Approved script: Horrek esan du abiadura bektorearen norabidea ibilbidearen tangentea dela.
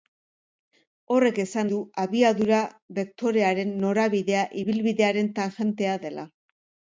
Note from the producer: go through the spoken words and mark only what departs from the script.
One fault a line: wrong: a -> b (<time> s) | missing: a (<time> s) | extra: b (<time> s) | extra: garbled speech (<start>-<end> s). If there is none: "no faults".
no faults